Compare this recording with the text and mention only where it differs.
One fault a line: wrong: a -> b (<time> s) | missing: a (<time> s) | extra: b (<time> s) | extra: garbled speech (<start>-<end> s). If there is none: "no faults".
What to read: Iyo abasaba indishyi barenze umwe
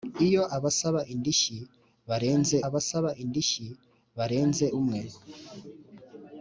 extra: abasaba indishyi barenze (2.6 s)